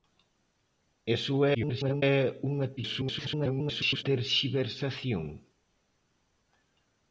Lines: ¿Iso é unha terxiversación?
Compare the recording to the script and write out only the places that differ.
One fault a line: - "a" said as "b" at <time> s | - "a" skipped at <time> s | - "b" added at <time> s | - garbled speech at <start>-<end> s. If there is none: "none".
- garbled speech at 1.5-2.0 s
- garbled speech at 2.8-4.0 s